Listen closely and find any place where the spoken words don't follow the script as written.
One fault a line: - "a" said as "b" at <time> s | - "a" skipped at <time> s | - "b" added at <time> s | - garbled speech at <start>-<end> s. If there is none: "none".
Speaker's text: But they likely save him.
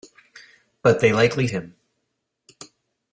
- "save" skipped at 1.5 s